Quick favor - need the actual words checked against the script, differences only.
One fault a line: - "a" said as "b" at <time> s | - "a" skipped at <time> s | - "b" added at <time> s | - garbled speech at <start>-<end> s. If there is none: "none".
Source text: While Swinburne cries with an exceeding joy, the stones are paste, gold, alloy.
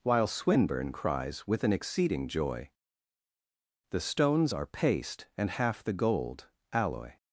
- "and half the" added at 5.4 s